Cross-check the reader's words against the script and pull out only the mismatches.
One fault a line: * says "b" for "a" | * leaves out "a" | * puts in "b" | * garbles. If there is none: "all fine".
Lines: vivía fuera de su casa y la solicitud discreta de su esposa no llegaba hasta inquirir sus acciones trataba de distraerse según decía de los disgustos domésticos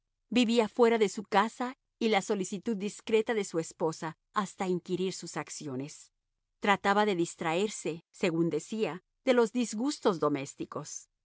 * leaves out "no llegaba"